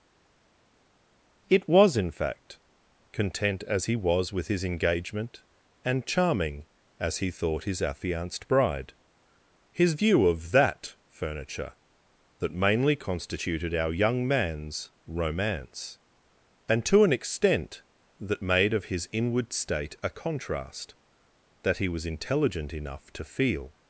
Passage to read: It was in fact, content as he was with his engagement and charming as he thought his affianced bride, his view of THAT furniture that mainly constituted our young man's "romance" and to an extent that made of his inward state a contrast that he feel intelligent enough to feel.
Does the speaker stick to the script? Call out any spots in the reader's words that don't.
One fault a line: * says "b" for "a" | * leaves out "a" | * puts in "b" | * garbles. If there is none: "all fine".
* says "was" for "feel"